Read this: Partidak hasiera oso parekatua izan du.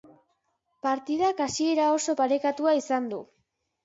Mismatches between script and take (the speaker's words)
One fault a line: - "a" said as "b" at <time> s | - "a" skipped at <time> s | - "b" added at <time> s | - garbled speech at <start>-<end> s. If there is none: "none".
none